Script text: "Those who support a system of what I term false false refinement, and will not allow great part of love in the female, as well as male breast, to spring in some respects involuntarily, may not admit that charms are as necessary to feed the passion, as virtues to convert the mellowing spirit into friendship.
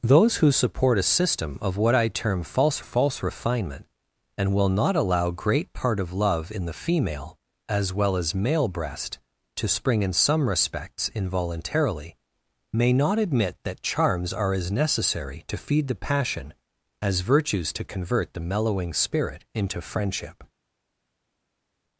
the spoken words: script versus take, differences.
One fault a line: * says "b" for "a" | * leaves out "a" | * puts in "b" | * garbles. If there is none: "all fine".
all fine